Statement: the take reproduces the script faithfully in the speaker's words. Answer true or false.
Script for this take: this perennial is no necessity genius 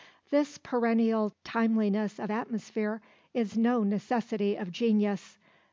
false